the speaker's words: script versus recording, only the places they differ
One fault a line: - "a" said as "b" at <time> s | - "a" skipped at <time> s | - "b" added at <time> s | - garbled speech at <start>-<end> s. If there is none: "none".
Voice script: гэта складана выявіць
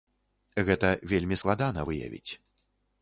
- "вельмі" added at 1.1 s